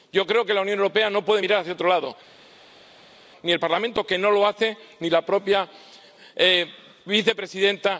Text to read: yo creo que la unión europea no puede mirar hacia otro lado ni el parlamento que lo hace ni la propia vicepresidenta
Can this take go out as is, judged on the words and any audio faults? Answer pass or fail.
fail